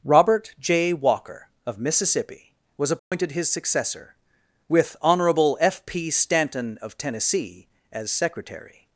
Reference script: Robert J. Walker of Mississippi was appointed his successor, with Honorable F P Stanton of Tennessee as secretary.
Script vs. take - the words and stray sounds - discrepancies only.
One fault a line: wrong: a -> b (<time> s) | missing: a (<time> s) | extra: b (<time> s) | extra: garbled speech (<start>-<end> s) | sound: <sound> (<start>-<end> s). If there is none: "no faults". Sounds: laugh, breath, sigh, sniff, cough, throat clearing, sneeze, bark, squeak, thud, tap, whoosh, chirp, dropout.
sound: dropout (3.0-3.1 s)